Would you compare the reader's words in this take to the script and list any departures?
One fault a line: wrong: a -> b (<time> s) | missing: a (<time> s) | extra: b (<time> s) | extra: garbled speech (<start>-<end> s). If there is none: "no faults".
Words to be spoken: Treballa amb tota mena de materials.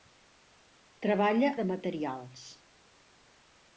missing: amb tota mena (1.5 s)